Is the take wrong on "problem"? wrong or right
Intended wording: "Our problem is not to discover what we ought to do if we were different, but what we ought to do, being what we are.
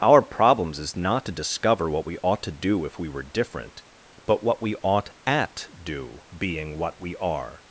wrong